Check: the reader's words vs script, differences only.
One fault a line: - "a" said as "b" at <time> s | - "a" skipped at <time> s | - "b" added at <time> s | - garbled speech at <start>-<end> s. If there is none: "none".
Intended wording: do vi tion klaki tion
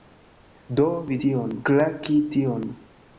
none